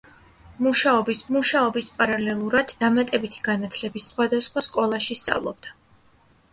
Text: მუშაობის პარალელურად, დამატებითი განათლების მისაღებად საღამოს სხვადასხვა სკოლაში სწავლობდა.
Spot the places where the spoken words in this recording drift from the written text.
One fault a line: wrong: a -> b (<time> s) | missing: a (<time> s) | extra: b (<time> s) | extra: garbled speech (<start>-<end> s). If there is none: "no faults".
extra: მუშაობის (1.4 s)
missing: მისაღებად საღამოს (4.1 s)